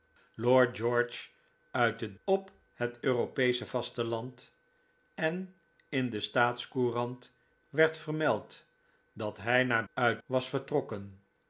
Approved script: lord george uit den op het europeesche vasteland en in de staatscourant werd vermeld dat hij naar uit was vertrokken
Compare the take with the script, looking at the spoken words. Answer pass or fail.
pass